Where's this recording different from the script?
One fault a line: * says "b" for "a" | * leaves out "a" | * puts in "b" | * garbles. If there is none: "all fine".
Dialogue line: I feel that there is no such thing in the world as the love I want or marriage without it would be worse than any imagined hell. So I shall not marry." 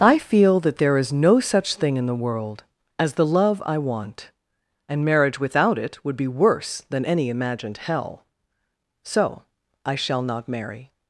* says "and" for "or"